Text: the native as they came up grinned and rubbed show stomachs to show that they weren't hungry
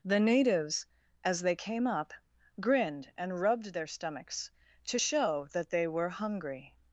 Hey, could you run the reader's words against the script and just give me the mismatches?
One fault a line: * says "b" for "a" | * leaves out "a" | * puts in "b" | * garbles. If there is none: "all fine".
* says "natives" for "native"
* says "their" for "show"
* says "were" for "weren't"